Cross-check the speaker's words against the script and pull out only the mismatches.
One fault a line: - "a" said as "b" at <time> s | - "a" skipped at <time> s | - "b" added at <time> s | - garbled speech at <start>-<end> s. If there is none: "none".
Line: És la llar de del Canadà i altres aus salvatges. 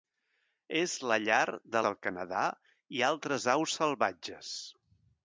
none